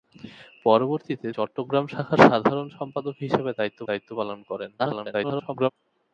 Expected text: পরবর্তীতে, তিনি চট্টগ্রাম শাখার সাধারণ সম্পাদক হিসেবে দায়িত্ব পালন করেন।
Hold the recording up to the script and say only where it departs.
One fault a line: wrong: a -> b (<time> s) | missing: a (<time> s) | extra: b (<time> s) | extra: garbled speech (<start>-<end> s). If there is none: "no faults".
missing: তিনি (1.3 s)
extra: দায়িত্ব (3.9 s)
extra: garbled speech (4.8-5.7 s)